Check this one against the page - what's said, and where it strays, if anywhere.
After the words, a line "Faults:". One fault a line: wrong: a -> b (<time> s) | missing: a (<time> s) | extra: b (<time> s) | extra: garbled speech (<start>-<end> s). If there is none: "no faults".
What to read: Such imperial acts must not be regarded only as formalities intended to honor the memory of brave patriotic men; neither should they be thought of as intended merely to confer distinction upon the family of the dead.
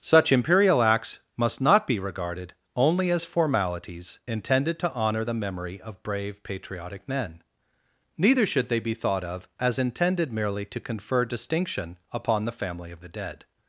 Such imperial acts must not be regarded only as formalities intended to honor the memory of brave patriotic men; neither should they be thought of as intended merely to confer distinction upon the family of the dead.
Faults:
no faults